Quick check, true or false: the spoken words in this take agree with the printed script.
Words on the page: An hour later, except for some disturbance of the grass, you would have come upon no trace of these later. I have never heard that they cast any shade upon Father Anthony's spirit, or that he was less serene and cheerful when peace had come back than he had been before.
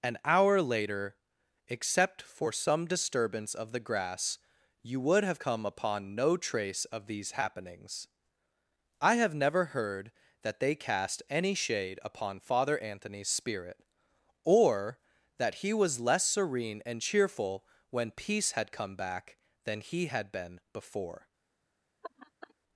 false